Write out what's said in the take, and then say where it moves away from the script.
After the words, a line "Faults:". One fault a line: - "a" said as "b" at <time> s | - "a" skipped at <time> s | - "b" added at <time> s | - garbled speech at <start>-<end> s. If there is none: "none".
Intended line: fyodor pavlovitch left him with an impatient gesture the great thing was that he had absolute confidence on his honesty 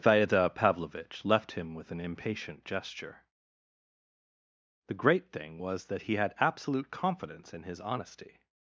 fyodor pavlovitch left him with an impatient gesture the great thing was that he had absolute confidence in his honesty
Faults:
- "on" said as "in" at 7.5 s